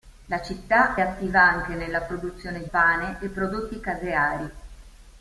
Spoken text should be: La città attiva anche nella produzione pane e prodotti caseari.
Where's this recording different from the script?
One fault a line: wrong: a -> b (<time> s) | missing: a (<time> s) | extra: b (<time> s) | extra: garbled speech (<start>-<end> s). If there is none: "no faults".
no faults